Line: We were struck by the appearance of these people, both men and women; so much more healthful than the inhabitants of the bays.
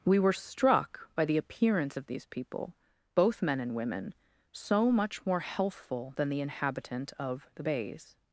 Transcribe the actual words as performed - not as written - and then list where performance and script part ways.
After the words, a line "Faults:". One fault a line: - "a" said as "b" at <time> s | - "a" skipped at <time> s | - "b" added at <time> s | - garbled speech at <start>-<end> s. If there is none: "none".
We were struck by the appearance of these people, both men and women; so much more healthful than the inhabitant of the bays.
Faults:
- "inhabitants" said as "inhabitant" at 6.4 s